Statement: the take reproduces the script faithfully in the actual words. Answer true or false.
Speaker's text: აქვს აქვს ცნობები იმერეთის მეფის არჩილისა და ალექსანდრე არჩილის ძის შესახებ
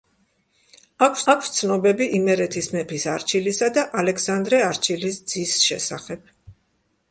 true